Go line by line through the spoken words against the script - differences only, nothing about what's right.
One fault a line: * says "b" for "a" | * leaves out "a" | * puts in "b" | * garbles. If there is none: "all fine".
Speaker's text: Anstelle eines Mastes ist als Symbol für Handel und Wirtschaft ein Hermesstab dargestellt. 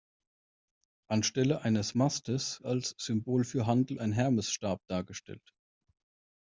* leaves out "ist"
* leaves out "und Wirtschaft"